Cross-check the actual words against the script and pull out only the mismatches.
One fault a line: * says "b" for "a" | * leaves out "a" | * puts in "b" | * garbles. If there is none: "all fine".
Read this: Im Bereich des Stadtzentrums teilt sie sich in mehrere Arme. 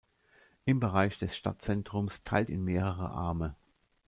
* leaves out "sie sich"